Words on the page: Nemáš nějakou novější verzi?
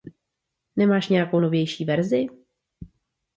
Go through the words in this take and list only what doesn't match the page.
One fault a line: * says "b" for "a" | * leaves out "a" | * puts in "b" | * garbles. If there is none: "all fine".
all fine